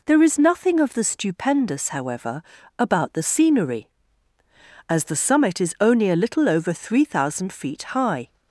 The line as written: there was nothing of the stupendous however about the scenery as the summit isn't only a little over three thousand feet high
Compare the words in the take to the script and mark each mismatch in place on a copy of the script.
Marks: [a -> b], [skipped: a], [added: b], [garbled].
there [was -> is] nothing of the stupendous however about the scenery as the summit [isn't -> is] only a little over three thousand feet high